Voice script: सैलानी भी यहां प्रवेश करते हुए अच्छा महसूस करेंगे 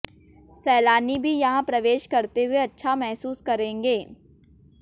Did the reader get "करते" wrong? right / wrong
right